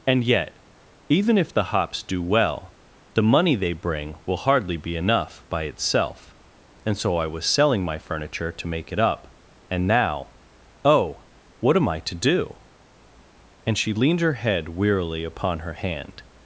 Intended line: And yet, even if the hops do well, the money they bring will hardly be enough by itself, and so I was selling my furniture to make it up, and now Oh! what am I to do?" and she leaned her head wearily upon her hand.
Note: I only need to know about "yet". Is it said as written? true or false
true